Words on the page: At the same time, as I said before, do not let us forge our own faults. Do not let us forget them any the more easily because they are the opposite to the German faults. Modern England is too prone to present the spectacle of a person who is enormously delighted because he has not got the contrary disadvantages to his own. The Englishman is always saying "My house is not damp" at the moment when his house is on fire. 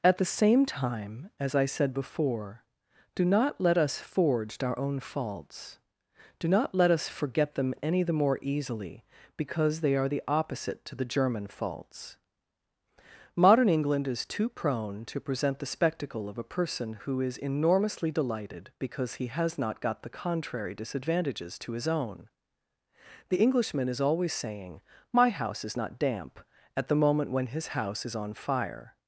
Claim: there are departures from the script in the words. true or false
false